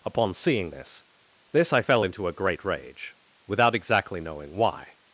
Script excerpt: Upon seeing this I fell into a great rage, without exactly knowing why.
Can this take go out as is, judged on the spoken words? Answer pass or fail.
fail